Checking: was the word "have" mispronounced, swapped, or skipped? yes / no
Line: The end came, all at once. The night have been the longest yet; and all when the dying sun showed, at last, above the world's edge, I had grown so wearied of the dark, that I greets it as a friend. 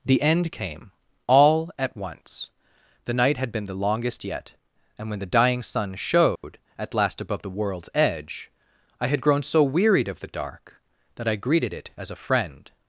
yes